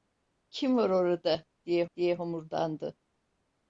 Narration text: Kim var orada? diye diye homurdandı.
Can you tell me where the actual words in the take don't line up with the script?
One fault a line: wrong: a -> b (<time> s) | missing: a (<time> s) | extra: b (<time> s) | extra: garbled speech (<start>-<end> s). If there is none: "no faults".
no faults